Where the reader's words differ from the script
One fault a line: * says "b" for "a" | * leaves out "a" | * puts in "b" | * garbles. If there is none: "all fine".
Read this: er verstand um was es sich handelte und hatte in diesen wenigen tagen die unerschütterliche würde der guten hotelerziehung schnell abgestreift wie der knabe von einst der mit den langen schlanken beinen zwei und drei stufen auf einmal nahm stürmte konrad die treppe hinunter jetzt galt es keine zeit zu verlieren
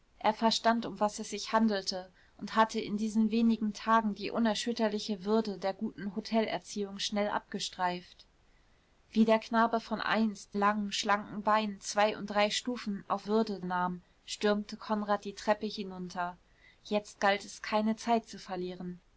* leaves out "der mit den"
* says "würde" for "einmal"